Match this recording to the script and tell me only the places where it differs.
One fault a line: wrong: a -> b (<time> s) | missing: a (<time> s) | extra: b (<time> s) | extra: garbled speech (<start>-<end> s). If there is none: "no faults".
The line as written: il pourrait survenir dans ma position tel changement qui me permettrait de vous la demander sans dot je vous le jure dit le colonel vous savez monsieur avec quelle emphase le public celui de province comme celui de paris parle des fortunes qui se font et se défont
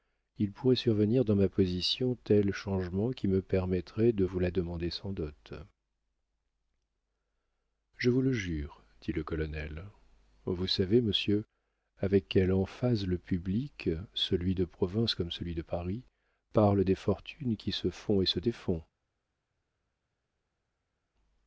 no faults